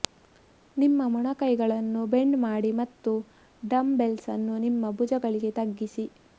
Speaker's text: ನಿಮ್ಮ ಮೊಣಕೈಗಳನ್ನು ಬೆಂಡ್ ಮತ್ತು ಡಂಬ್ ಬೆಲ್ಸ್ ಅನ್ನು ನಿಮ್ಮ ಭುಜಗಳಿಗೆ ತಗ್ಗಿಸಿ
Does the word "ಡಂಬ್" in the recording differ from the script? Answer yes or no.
no